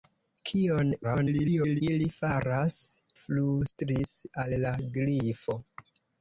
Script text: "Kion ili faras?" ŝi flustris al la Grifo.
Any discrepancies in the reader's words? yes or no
yes